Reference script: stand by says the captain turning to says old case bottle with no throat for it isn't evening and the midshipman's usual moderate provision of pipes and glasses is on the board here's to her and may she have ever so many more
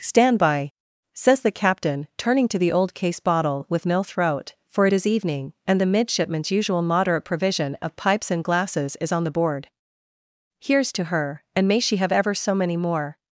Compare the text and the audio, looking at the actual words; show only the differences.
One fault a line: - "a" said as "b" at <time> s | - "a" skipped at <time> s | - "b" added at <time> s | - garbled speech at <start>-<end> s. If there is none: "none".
- "says" said as "the" at 2.6 s
- "isn't" said as "is" at 4.9 s